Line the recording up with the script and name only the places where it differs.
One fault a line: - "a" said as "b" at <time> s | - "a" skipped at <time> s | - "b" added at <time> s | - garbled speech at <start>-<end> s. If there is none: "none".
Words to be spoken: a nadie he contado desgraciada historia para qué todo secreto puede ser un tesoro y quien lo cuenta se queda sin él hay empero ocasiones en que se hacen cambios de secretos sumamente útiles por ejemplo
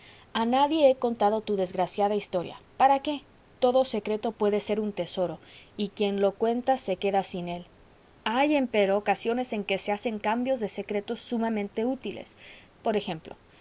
- "tu" added at 1.4 s